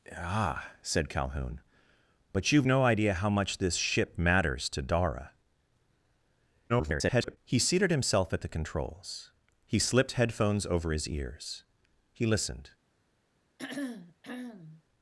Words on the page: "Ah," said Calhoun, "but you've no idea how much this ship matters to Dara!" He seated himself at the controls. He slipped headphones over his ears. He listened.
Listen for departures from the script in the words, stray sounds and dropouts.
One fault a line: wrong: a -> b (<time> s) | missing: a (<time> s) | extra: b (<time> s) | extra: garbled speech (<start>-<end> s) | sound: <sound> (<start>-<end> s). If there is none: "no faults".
extra: garbled speech (6.7-7.4 s)
sound: throat clearing (13.6-14.8 s)